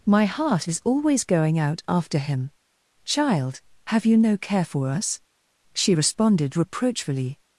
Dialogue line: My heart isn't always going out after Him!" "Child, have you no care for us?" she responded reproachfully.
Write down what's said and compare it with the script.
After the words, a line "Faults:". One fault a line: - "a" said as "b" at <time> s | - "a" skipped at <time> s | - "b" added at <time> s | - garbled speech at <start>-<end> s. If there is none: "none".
My heart is always going out after Him!" "Child, have you no care for us?" she responded reproachfully.
Faults:
- "isn't" said as "is" at 0.6 s